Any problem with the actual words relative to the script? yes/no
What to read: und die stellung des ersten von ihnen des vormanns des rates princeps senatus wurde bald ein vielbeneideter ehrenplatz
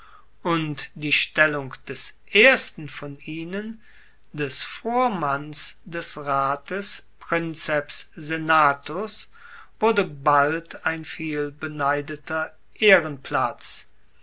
no